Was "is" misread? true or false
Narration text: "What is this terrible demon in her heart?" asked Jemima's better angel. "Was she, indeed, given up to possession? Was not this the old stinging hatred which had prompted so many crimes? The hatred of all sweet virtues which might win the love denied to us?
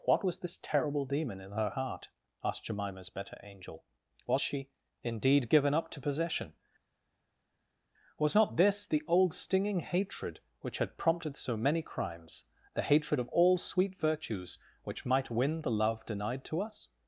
true